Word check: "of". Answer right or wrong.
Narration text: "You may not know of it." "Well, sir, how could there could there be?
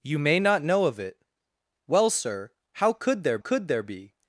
right